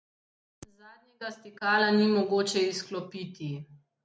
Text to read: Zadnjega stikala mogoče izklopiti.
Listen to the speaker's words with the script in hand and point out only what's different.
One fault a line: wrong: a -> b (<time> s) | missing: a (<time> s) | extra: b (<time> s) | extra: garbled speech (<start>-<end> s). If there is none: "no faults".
extra: ni (1.9 s)